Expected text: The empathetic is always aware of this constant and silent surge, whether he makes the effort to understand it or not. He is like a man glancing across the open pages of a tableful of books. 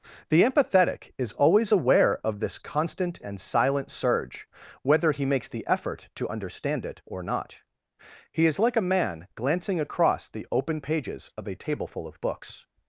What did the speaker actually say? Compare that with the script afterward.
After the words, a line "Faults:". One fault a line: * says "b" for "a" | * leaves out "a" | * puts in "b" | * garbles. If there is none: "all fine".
The empathetic is always aware of this constant and silent surge, whether he makes the effort to understand it or not. He is like a man glancing across the open pages of a tableful of books.
Faults:
all fine